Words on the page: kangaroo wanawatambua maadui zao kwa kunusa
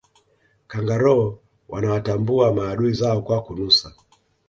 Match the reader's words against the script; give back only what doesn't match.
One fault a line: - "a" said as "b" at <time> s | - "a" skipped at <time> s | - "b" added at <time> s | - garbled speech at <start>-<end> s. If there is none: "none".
none